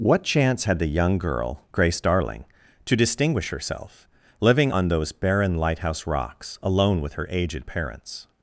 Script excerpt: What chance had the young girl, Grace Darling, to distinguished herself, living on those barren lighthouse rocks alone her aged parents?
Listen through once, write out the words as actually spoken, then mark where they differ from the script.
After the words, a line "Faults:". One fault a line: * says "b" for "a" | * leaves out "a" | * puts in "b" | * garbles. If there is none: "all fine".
What chance had the young girl, Grace Darling, to distinguish herself, living on those barren lighthouse rocks alone with her aged parents?
Faults:
* says "distinguish" for "distinguished"
* puts in "with"